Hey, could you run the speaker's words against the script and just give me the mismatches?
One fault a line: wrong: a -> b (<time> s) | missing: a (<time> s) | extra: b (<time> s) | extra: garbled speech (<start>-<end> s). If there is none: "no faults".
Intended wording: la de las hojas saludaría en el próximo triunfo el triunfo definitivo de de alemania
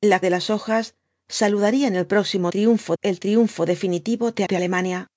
no faults